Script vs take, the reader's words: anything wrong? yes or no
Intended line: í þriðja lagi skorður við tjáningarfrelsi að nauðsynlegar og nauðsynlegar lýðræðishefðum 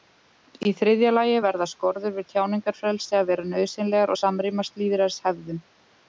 yes